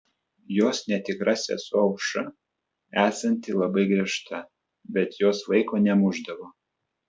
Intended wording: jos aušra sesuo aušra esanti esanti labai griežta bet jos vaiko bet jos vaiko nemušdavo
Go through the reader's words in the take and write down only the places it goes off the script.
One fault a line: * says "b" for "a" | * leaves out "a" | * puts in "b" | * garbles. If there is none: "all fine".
* says "netikra" for "aušra"
* leaves out "esanti"
* leaves out "bet jos vaiko"